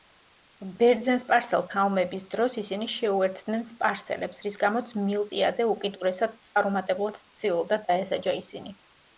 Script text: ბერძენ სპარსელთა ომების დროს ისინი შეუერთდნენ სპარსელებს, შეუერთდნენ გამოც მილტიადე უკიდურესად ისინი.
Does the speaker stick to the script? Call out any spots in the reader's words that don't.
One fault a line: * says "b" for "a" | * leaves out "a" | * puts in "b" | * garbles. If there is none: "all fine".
* says "რის" for "შეუერთდნენ"
* puts in "წარუმატებლად ცდილობდა დაესაჯა"